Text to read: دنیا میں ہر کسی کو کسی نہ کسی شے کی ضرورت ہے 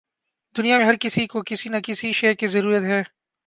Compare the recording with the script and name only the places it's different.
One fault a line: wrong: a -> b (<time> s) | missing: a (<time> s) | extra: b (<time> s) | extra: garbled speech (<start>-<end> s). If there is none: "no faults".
no faults